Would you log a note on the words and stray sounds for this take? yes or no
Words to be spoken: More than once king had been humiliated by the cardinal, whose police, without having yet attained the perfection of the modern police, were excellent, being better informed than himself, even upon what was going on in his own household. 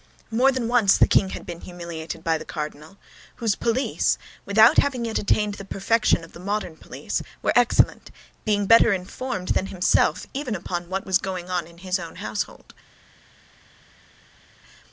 yes